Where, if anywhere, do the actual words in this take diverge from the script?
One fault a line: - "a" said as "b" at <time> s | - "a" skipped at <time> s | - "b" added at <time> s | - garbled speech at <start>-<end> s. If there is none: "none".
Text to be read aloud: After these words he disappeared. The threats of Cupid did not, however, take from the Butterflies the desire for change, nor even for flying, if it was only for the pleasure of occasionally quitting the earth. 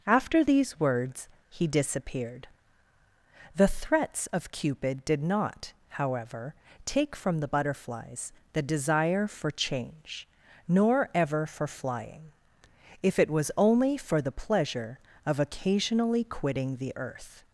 - "even" said as "ever" at 11.1 s